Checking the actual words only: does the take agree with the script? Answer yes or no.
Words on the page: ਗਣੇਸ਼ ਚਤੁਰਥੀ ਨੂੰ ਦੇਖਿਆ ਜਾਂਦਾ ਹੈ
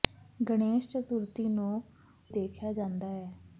yes